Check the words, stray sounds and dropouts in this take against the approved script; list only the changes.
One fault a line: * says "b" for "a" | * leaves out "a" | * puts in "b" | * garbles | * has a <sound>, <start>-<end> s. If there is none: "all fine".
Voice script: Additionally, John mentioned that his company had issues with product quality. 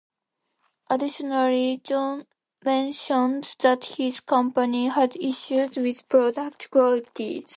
all fine